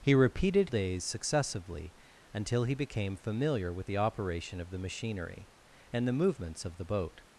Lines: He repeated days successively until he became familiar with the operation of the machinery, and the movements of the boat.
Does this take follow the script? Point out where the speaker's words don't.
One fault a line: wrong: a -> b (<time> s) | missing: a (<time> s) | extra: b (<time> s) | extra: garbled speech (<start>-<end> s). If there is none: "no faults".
no faults